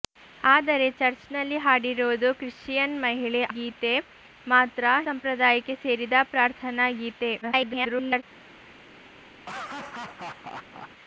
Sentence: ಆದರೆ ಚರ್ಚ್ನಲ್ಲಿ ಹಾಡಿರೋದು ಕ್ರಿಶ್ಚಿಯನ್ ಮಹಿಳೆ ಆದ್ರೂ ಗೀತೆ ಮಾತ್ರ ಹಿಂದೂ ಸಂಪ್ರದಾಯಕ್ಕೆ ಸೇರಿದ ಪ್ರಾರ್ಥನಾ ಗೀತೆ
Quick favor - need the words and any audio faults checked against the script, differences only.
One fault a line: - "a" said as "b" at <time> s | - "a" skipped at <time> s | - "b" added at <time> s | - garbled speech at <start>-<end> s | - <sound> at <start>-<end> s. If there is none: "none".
- "ಆದ್ರೂ" skipped at 3.4 s
- "ಹಿಂದೂ" skipped at 4.8 s
- garbled speech at 7.4-8.2 s
- laugh at 9.4-10.9 s